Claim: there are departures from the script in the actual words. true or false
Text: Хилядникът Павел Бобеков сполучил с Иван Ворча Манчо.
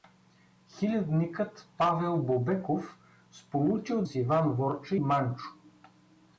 false